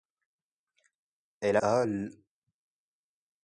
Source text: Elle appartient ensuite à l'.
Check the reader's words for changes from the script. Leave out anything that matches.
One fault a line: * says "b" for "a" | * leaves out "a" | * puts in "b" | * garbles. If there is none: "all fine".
* leaves out "appartient ensuite"